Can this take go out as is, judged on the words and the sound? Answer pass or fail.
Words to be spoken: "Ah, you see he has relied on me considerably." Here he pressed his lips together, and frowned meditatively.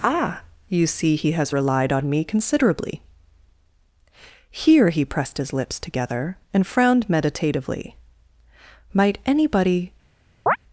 fail